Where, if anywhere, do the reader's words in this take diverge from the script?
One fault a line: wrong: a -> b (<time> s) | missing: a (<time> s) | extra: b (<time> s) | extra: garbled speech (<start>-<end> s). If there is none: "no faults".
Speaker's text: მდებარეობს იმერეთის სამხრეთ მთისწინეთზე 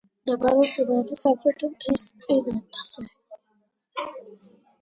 no faults